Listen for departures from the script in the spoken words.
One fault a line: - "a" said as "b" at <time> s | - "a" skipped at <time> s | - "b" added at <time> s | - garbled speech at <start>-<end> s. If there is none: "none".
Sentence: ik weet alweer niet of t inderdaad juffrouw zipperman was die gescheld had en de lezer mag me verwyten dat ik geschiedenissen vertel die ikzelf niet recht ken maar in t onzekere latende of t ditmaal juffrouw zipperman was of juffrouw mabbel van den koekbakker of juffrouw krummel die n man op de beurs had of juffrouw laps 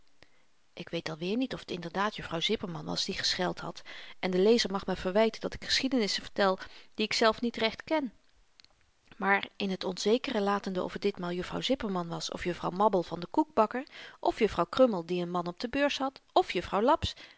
none